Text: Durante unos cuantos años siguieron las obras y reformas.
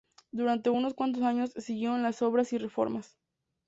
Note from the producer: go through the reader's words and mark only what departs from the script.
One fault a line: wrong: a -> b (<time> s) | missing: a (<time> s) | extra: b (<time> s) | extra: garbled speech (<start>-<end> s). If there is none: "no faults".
no faults